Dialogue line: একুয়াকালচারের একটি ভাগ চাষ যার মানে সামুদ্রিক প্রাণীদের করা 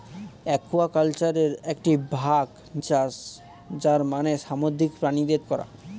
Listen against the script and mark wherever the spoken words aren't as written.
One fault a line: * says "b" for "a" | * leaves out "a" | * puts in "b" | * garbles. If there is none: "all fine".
all fine